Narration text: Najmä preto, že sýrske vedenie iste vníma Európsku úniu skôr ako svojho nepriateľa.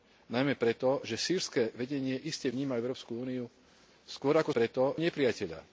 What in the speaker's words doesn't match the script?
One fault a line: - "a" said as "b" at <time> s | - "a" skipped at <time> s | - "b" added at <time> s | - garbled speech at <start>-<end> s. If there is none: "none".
- "svojho" said as "preto" at 4.5 s